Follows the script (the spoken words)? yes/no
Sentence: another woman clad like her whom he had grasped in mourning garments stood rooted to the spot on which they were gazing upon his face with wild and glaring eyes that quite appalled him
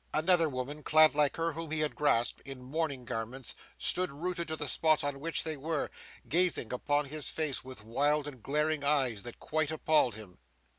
yes